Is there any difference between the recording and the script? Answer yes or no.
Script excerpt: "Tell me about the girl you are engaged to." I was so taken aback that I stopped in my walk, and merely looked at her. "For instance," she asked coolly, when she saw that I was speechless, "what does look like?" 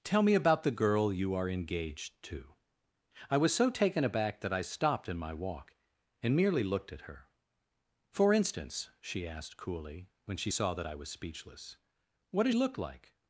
no